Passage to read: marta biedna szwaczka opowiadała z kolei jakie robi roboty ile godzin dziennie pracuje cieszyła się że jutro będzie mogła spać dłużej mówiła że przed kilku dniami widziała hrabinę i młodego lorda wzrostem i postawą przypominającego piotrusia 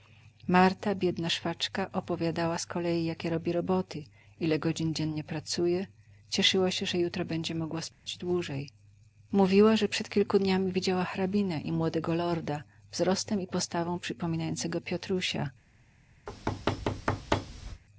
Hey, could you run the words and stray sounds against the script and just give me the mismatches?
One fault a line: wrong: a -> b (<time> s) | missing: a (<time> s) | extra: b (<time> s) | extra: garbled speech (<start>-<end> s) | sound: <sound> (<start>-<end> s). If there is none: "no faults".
sound: dropout (7.9-8.1 s)
sound: thud (16.3-17.8 s)